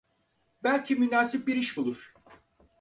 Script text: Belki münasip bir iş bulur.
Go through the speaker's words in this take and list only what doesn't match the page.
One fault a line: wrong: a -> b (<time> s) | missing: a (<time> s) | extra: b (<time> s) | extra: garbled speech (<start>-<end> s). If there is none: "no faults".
no faults